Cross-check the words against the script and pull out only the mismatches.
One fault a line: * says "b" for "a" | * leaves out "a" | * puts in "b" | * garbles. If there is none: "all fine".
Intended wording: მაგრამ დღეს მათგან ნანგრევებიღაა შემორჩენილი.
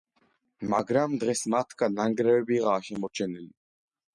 all fine